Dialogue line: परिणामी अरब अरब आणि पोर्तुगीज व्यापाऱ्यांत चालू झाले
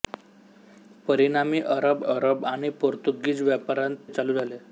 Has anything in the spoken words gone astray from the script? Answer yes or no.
no